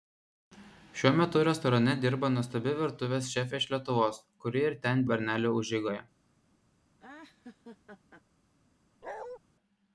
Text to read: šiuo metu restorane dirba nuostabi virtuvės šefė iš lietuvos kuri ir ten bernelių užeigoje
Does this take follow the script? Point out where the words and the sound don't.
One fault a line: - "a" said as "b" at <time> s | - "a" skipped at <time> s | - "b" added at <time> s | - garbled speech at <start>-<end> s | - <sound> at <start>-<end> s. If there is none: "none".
- laugh at 7.0-8.2 s
- bark at 9.0-9.4 s